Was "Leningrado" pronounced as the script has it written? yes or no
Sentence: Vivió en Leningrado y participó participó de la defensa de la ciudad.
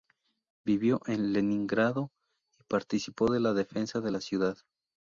yes